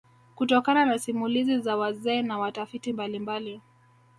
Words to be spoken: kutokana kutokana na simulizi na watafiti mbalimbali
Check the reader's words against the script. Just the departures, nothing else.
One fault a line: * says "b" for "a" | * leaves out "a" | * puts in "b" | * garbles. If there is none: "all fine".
* leaves out "kutokana"
* puts in "za wazee"